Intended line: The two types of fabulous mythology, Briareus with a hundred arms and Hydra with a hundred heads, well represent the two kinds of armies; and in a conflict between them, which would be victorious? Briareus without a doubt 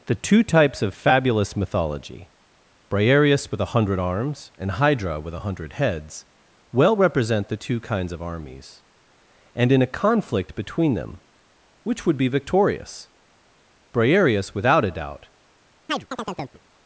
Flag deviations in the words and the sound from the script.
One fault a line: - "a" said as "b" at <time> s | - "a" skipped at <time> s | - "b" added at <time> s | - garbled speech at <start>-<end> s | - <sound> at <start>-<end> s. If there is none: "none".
- chirp at 15.9-16.6 s